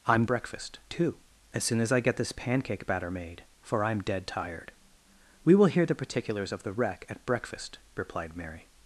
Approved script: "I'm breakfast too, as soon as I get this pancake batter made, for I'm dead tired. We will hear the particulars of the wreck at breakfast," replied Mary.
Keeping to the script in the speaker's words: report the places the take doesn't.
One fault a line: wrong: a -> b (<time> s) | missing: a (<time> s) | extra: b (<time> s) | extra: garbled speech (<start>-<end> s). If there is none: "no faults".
no faults